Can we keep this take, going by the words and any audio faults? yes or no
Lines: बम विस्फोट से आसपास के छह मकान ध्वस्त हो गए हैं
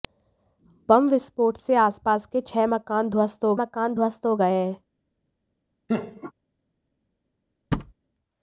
no